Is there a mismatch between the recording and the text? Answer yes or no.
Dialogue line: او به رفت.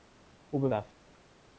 no